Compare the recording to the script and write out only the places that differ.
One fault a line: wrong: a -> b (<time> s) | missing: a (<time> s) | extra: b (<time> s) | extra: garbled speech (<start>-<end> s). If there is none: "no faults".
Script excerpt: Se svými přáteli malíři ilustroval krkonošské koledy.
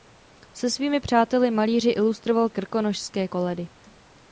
no faults